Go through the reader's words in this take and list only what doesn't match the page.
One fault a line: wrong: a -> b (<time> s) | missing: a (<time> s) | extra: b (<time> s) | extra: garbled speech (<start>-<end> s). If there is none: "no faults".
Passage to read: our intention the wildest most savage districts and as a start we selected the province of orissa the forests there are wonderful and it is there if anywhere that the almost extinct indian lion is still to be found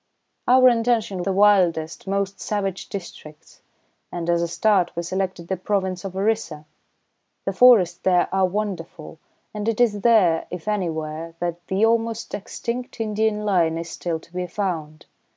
no faults